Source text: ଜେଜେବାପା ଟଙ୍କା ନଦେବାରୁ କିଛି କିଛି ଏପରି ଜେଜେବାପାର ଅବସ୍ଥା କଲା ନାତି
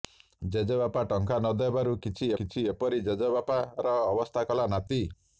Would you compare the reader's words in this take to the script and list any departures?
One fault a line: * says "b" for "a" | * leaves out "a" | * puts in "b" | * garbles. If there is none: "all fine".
all fine